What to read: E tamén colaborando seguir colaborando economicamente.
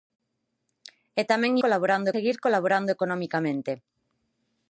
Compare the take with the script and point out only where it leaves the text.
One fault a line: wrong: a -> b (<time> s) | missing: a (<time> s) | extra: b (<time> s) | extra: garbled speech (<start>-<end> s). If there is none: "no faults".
no faults